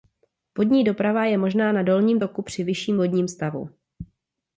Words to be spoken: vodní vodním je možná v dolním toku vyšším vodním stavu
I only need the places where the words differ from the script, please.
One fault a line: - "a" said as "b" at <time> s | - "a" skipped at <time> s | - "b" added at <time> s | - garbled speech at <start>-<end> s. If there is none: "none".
- "vodním" said as "doprava" at 0.8 s
- "v" said as "na" at 1.7 s
- "při" added at 2.4 s